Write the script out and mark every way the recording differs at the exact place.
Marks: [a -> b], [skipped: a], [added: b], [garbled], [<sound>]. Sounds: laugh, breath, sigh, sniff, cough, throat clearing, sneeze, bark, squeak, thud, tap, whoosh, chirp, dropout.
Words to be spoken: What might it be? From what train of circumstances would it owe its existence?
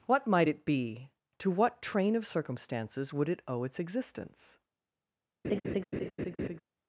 What might it be? [From -> To] what train of circumstances would it owe its existence? [laugh]